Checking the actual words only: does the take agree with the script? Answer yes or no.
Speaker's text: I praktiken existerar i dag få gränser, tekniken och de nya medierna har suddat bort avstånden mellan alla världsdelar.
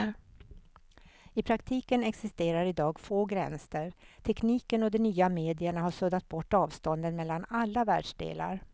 yes